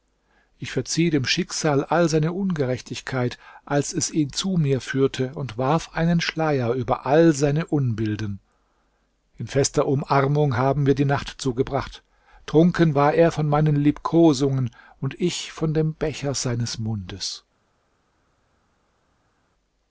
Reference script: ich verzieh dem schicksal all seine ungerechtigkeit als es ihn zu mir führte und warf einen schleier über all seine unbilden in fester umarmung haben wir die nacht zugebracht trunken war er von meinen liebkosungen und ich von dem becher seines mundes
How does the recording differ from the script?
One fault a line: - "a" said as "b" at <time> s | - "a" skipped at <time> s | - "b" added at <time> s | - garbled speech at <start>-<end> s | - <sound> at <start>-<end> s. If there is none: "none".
none